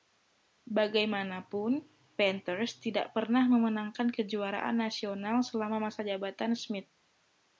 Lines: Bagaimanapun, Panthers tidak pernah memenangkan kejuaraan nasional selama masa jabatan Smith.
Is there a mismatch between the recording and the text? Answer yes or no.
no